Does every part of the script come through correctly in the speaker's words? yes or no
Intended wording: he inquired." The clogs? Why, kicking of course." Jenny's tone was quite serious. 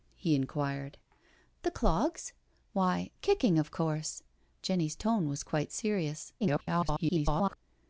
no